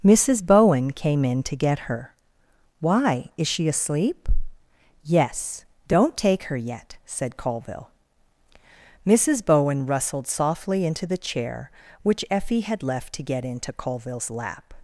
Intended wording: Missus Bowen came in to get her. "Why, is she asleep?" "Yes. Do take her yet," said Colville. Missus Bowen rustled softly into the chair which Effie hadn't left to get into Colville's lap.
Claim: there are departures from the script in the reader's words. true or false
true